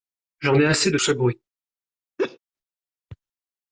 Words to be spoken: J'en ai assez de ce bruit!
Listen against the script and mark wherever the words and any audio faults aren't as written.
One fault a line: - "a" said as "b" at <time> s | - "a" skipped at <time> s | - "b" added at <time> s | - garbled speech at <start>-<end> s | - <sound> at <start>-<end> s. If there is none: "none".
- laugh at 2.2-2.4 s